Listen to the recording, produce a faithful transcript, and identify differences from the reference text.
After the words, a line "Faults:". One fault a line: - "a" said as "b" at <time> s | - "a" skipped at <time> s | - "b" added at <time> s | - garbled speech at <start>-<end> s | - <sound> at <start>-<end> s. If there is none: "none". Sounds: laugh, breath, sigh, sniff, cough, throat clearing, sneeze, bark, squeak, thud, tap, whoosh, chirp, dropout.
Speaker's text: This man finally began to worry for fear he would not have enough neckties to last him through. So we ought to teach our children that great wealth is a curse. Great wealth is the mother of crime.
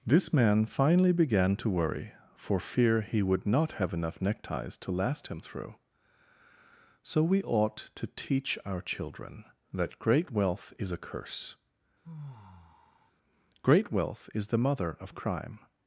This man finally began to worry for fear he would not have enough neckties to last him through. So we ought to teach our children that great wealth is a curse. Great wealth is the mother of crime.
Faults:
- sigh at 12.0-13.1 s